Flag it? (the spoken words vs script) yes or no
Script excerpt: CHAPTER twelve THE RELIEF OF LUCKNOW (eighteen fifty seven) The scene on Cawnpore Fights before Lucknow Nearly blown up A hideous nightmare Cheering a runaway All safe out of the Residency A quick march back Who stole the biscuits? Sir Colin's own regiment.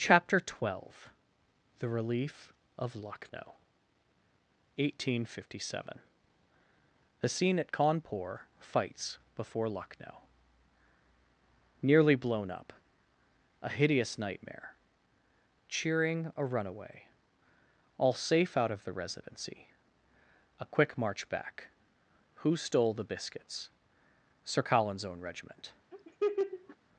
yes